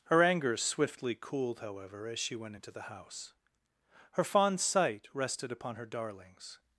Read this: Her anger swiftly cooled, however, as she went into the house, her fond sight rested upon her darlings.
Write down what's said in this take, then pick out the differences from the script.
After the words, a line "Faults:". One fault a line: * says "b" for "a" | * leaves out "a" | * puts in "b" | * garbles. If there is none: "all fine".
Her anger swiftly cooled, however, as she went into the house, her fond sight rested upon her darlings.
Faults:
all fine